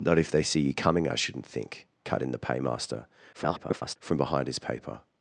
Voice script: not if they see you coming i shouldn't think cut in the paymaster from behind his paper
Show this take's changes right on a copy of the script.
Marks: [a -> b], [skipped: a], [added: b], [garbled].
not if they see you coming i shouldn't think cut in the paymaster [garbled] from behind his paper